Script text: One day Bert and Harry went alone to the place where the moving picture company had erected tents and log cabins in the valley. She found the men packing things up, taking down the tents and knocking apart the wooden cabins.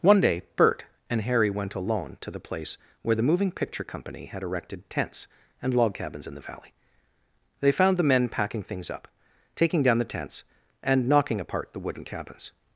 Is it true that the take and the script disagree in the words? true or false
true